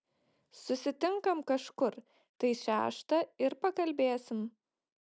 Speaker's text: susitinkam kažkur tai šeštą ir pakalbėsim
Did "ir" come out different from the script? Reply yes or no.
no